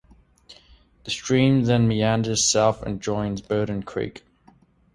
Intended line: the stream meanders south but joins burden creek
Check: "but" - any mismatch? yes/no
yes